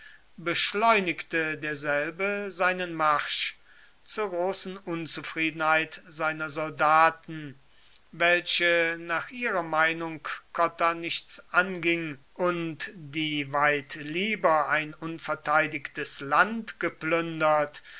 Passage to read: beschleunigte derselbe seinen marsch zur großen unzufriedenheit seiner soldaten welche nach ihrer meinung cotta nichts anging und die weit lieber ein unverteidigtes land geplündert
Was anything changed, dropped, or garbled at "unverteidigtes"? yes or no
no